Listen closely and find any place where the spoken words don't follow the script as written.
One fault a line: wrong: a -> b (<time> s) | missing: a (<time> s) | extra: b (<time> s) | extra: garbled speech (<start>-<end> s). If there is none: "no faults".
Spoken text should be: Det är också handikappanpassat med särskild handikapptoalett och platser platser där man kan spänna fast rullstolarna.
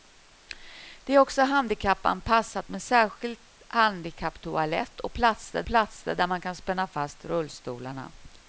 no faults